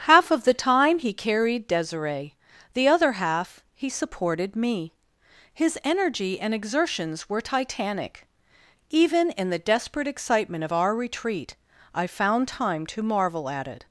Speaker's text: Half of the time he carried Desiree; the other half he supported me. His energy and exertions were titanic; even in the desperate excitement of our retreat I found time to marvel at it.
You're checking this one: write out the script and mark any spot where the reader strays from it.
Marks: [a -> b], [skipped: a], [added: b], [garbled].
Half of the time he carried Desiree; the other half he supported me. His energy and exertions were titanic; even in the desperate excitement of our retreat I found time to marvel at it.